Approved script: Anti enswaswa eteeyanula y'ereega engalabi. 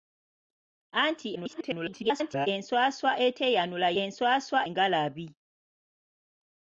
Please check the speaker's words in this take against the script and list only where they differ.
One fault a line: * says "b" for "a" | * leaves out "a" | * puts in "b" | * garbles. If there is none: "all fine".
* garbles
* says "enswaswa" for "y'ereega"